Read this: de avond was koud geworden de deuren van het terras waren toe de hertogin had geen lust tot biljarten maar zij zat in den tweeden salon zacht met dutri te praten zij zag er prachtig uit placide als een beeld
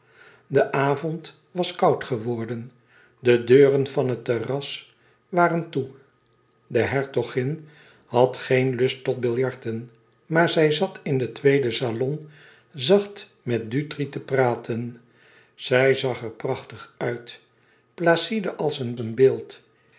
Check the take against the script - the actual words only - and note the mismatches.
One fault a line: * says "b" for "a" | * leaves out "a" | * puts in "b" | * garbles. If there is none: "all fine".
* puts in "een"